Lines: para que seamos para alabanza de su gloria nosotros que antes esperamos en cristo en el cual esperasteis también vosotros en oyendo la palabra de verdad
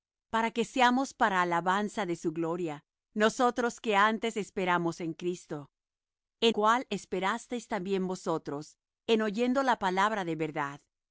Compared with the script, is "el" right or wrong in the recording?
wrong